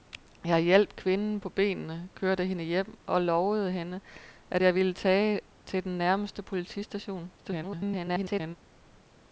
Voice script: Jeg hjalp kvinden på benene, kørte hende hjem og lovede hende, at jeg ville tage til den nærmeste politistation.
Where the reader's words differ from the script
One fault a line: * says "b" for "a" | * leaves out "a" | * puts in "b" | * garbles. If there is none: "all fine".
* garbles